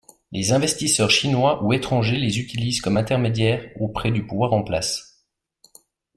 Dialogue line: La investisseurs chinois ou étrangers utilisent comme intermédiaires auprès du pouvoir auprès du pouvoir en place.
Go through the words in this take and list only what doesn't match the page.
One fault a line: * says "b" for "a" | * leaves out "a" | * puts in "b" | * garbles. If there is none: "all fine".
* says "Les" for "La"
* puts in "les"
* leaves out "auprès du pouvoir"